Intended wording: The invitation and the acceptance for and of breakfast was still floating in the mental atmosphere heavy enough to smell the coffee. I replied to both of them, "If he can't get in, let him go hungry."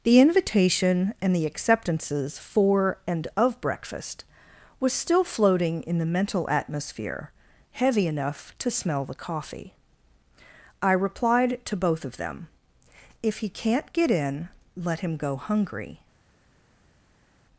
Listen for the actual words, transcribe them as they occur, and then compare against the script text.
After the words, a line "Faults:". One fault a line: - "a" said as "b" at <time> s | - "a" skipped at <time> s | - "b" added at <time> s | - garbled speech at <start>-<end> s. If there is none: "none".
The invitation and the acceptances for and of breakfast was still floating in the mental atmosphere heavy enough to smell the coffee. I replied to both of them, "If he can't get in, let him go hungry."
Faults:
- "acceptance" said as "acceptances" at 1.4 s